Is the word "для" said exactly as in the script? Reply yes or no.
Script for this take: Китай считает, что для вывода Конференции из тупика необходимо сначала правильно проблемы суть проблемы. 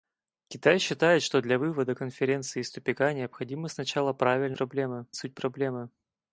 yes